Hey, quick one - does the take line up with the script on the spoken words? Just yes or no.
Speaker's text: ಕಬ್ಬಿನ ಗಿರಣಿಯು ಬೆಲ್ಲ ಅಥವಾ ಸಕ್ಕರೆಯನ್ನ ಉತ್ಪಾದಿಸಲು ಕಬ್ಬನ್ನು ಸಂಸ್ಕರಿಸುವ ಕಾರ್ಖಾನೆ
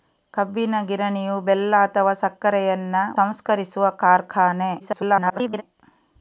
no